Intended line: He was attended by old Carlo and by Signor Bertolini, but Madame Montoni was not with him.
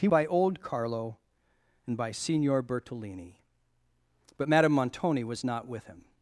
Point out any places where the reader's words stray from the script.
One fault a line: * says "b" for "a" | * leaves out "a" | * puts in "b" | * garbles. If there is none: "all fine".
* leaves out "was attended"